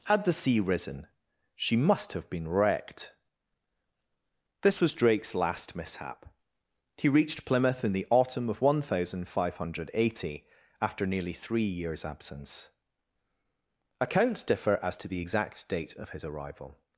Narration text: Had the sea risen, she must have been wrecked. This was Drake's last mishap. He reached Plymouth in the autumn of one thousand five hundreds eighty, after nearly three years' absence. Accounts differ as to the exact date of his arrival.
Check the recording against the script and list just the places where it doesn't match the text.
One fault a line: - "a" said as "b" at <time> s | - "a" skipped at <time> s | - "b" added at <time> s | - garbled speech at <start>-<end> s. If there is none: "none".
- "hundreds" said as "hundred" at 9.6 s